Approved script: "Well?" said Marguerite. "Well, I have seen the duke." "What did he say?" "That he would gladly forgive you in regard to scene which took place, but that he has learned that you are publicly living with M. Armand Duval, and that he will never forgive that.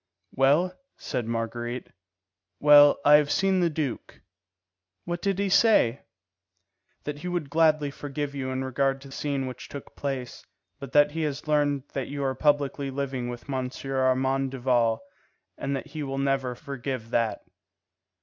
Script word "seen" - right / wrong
right